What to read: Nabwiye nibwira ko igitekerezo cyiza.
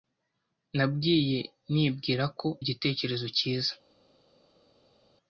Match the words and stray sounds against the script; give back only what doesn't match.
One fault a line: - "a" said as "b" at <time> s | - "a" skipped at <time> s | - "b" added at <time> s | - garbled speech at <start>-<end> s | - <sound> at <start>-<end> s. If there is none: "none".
none